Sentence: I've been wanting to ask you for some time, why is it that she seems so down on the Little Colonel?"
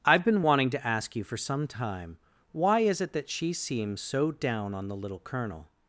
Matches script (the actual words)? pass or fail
pass